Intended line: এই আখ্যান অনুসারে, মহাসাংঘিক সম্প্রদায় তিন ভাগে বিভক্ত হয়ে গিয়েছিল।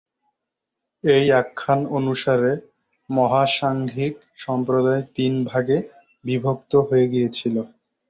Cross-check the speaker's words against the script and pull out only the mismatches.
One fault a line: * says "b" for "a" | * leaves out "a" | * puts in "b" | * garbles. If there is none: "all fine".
all fine